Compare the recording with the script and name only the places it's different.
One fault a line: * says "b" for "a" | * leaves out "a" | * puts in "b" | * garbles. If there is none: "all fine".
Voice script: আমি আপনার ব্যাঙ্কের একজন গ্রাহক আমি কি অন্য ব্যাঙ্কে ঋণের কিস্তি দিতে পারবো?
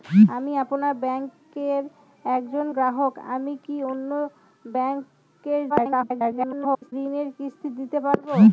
* garbles